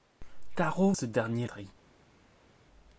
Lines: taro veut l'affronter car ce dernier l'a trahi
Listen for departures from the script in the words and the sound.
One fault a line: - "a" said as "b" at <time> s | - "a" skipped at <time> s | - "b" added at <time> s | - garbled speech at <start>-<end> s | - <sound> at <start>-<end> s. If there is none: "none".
- "veut l'affronter car" skipped at 0.9 s
- "l'a" skipped at 1.5 s